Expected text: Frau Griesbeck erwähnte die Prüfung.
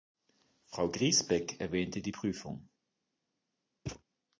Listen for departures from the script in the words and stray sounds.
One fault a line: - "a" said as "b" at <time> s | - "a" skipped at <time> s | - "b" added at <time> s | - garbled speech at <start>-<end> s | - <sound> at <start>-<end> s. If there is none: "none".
- thud at 3.9-4.0 s